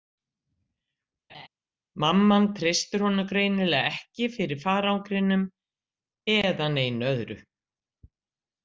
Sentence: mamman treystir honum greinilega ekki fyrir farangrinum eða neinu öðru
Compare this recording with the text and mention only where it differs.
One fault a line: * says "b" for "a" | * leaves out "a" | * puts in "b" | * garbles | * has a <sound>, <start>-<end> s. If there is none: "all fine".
* has a laugh, 1.3-1.5 s